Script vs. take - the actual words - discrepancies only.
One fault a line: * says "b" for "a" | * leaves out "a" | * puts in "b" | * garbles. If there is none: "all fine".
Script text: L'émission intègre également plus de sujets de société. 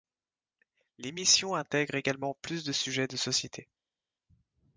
all fine